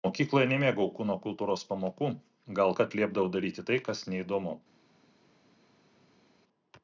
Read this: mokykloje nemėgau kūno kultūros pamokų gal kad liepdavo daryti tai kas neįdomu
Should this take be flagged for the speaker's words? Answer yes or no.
no